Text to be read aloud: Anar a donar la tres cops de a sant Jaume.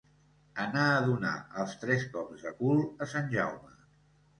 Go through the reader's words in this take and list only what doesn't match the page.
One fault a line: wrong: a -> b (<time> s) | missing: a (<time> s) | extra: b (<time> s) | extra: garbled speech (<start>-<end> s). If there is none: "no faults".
wrong: la -> els (1.6 s)
extra: cul (2.6 s)